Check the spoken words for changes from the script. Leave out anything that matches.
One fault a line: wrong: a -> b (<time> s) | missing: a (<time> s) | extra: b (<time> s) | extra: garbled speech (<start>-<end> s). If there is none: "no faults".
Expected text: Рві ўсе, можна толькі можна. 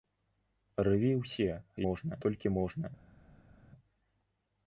no faults